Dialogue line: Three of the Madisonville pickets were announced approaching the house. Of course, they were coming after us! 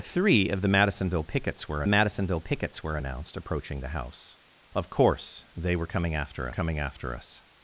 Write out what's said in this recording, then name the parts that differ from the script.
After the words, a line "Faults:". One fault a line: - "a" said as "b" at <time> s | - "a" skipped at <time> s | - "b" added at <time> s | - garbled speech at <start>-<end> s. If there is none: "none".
Three of the Madisonville pickets were Madisonville pickets were announced approaching the house. Of course, they were coming after coming after us!
Faults:
- "Madisonville pickets were" added at 1.9 s
- "coming after" added at 6.5 s